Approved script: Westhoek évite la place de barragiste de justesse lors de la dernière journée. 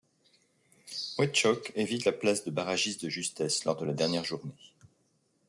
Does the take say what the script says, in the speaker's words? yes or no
yes